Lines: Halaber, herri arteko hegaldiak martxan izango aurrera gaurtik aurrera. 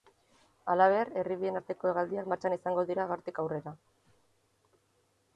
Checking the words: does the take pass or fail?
fail